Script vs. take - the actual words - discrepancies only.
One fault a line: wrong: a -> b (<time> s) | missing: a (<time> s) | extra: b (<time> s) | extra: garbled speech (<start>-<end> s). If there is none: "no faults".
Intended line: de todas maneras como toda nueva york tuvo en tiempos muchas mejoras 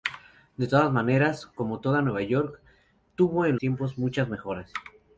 no faults